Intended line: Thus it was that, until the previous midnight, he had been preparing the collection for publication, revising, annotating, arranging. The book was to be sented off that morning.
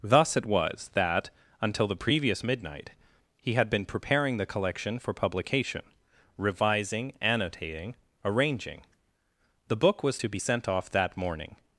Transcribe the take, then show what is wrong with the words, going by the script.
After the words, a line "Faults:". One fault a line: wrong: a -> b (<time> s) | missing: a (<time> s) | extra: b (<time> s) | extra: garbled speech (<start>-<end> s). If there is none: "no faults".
Thus it was that, until the previous midnight, he had been preparing the collection for publication, revising, annotating, arranging. The book was to be sent off that morning.
Faults:
wrong: sented -> sent (10.4 s)